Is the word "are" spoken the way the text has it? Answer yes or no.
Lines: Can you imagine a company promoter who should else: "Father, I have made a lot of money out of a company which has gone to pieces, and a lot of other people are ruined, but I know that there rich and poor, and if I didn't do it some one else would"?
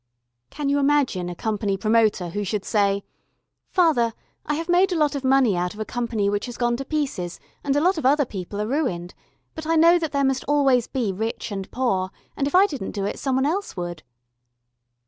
yes